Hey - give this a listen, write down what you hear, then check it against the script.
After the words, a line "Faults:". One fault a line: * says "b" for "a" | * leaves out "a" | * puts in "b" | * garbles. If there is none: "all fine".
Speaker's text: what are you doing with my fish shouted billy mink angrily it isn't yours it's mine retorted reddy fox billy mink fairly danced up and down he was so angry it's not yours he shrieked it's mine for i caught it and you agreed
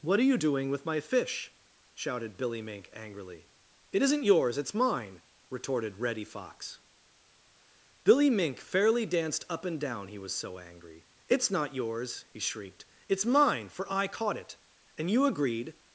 what are you doing with my fish shouted billy mink angrily it isn't yours it's mine retorted reddy fox billy mink fairly danced up and down he was so angry it's not yours he shrieked it's mine for i caught it and you agreed
Faults:
all fine